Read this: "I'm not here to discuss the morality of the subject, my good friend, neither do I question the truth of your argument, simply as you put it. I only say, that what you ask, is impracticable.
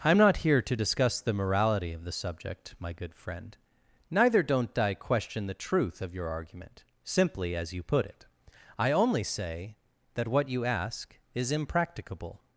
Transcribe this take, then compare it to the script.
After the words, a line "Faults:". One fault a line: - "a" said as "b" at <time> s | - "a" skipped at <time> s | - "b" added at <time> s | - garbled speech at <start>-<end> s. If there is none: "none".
"I'm not here to discuss the morality of the subject, my good friend, neither don't I question the truth of your argument, simply as you put it. I only say, that what you ask, is impracticable.
Faults:
- "do" said as "don't" at 4.4 s